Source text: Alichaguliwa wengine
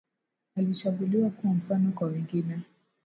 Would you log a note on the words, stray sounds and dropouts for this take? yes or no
yes